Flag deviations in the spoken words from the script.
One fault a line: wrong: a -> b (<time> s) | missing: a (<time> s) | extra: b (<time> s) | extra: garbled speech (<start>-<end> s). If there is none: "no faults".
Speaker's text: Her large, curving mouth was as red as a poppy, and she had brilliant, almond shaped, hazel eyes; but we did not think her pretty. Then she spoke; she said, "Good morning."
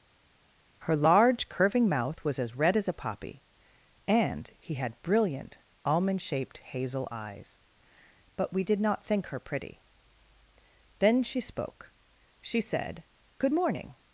wrong: she -> he (4.6 s)